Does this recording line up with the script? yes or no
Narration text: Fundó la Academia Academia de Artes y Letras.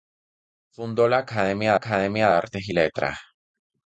yes